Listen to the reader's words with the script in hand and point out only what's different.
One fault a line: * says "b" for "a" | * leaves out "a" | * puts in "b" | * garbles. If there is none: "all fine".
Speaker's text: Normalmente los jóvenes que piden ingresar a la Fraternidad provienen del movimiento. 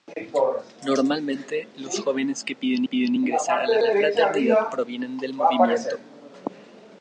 * puts in "piden"
* puts in "la"